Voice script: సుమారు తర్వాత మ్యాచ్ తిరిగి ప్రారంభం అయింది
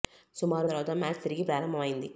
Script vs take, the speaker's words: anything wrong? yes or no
no